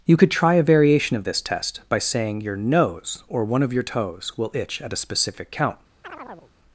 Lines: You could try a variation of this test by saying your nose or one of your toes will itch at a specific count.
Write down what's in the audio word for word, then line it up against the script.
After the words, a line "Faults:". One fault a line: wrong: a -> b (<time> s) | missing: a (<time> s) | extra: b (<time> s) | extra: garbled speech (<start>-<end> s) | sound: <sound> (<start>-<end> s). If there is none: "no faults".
You could try a variation of this test by saying your nose or one of your toes will itch at a specific count.
Faults:
sound: chirp (6.0-6.5 s)